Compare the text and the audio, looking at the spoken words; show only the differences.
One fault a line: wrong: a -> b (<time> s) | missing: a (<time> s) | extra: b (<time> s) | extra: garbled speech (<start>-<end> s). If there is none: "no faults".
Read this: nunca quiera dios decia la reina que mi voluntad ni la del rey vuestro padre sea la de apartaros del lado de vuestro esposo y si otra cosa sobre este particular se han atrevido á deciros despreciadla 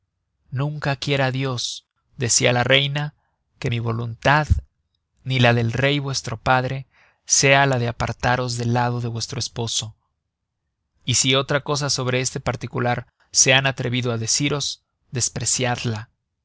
no faults